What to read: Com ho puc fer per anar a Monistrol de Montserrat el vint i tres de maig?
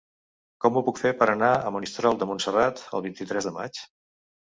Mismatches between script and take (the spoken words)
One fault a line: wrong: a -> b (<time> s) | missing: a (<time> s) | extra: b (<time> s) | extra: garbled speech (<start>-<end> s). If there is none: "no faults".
no faults